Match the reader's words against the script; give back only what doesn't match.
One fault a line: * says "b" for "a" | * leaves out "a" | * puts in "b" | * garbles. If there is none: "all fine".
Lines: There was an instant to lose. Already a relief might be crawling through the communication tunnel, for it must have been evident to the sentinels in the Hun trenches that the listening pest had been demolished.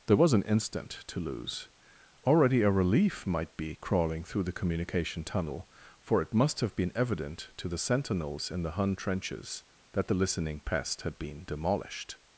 all fine